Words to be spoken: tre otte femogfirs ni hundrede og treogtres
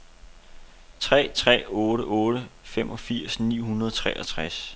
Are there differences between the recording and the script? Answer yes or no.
yes